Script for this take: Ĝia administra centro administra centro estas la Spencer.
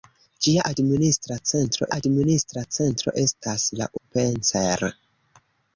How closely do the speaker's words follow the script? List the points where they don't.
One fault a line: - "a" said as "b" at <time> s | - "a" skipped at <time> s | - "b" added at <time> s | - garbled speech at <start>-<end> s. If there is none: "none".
none